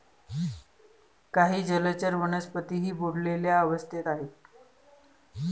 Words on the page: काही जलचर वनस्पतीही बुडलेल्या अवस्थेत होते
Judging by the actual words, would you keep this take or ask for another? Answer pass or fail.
fail